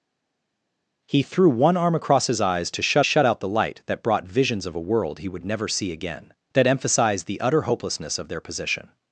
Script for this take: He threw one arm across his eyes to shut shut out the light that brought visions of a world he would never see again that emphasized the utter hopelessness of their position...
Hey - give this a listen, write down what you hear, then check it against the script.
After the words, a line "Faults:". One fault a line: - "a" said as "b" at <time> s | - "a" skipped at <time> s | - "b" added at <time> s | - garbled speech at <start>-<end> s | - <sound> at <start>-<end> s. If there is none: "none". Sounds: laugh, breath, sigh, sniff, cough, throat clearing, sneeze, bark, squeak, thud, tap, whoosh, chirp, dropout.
He threw one arm across his eyes to shut shut out the light that brought visions of a world he would never see again that emphasized the utter hopelessness of their position...
Faults:
none